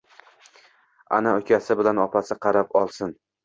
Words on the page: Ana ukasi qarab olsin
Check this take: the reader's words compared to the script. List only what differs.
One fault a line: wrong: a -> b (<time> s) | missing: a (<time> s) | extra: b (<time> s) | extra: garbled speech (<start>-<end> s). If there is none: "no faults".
extra: bilan opasi (1.9 s)